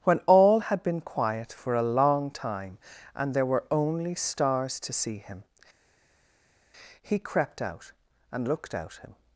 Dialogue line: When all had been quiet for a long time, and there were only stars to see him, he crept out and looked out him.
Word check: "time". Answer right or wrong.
right